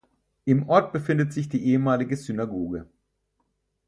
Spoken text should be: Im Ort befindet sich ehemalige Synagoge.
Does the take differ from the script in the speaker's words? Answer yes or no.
yes